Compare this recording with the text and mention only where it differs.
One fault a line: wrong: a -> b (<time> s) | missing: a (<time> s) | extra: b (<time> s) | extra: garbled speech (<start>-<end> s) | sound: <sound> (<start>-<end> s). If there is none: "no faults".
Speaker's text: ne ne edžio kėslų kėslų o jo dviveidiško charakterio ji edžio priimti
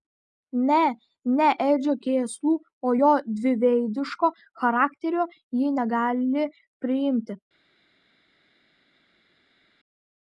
missing: kėslų (2.5 s)
wrong: edžio -> negali (5.8 s)